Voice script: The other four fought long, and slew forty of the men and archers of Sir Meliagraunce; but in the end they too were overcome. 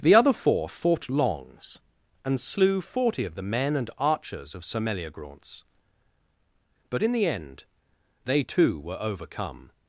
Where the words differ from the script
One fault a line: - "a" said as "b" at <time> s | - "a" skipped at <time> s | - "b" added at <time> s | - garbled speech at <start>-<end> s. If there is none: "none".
- "long" said as "longs" at 1.1 s